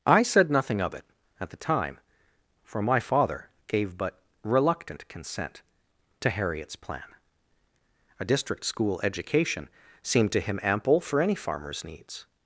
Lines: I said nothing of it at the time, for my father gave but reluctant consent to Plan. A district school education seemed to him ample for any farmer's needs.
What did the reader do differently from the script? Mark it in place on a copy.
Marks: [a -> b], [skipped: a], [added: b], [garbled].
I said nothing of it at the time, for my father gave but reluctant consent to [added: Harriet's] Plan. A district school education seemed to him ample for any farmer's needs.